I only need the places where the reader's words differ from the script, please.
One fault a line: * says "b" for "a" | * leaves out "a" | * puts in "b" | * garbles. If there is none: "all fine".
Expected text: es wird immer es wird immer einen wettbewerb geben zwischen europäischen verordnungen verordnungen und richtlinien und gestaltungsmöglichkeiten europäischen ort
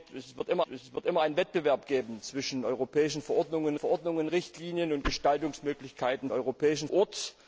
all fine